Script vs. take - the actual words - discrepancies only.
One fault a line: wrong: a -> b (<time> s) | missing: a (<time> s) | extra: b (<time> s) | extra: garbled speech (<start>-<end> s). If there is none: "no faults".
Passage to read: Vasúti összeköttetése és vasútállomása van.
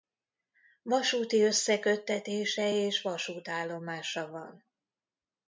no faults